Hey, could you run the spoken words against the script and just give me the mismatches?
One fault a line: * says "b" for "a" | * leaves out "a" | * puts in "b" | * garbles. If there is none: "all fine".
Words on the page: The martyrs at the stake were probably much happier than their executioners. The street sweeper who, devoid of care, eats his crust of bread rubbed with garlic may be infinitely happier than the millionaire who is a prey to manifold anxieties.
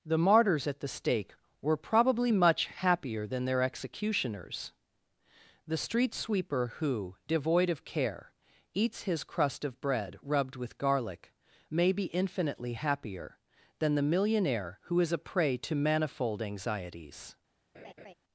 all fine